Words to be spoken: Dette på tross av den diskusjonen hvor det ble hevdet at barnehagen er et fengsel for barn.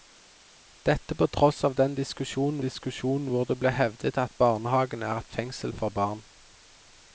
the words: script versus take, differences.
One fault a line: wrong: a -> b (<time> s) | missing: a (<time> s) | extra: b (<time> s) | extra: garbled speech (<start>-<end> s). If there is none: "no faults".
extra: diskusjonen (2.6 s)